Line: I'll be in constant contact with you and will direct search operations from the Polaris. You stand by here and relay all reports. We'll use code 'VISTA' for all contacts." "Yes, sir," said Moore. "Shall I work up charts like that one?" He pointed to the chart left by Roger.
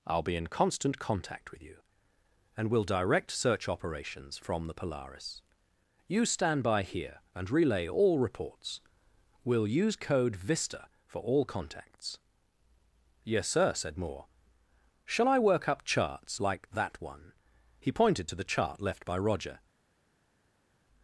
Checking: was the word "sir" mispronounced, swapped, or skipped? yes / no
no